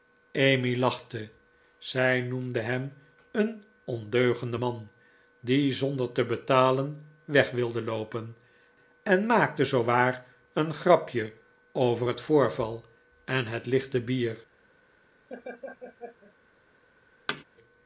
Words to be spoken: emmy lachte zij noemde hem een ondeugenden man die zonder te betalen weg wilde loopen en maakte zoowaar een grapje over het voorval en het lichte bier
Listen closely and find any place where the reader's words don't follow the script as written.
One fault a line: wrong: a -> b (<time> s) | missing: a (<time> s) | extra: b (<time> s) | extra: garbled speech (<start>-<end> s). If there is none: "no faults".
no faults